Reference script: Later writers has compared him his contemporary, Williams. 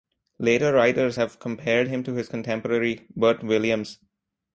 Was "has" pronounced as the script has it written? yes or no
no